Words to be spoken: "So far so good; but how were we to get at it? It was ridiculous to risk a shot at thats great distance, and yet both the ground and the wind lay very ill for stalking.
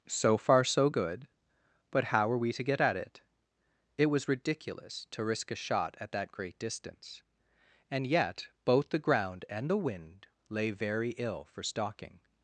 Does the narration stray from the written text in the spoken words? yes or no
yes